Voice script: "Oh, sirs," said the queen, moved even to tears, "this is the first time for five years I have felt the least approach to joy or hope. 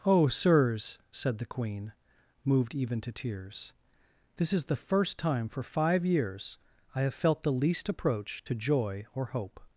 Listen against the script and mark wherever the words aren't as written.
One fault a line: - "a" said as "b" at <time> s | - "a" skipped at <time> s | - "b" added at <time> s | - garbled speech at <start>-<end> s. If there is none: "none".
none